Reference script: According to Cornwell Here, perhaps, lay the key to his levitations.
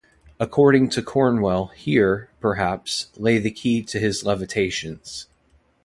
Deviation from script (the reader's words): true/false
false